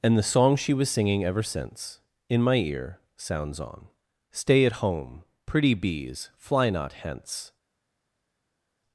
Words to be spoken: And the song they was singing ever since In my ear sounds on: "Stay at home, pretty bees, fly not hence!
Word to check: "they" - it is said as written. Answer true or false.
false